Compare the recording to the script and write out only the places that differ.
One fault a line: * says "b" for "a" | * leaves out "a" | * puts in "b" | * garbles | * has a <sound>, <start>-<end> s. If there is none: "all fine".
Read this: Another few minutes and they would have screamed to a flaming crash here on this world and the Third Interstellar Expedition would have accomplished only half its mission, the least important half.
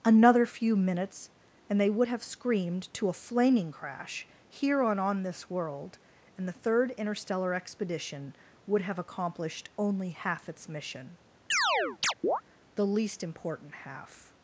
* puts in "on"
* has a chirp, 11.5-12.4 s